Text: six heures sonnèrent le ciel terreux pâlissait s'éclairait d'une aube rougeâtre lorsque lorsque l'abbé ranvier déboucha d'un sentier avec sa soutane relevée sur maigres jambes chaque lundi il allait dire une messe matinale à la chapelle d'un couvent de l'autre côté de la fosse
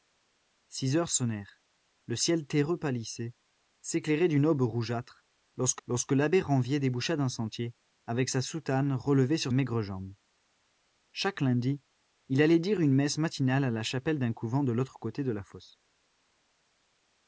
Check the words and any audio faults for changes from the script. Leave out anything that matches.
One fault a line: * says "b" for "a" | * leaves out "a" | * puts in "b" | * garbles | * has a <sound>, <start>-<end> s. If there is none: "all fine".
all fine